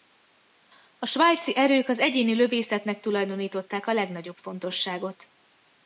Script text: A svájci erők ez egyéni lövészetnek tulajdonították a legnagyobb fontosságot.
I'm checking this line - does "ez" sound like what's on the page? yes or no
no